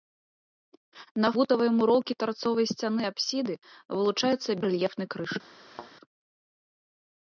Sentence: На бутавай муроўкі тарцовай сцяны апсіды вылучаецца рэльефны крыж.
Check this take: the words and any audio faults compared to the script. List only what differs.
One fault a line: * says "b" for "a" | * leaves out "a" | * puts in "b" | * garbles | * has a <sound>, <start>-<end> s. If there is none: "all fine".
* has a thud, 5.7-5.9 s